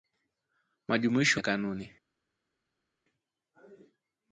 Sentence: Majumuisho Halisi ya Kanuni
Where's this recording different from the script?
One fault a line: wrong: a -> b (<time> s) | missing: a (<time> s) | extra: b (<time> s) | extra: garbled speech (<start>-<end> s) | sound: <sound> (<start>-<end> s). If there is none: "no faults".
missing: Halisi (1.4 s)